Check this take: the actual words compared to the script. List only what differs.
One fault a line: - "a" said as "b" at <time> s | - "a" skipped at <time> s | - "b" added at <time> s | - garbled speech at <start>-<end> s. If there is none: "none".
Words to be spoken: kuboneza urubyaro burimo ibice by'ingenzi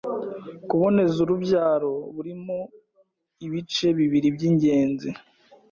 - "bibiri" added at 4.0 s